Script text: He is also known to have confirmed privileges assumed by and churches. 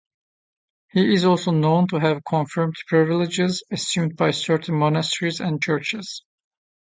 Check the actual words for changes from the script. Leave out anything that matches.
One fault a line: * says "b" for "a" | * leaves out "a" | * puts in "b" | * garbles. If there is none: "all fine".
* puts in "certain monasteries"